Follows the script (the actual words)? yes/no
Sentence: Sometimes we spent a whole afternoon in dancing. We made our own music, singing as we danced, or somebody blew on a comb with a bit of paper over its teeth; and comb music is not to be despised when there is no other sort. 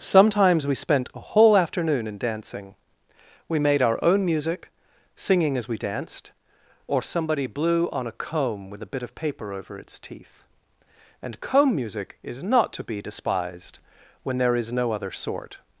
yes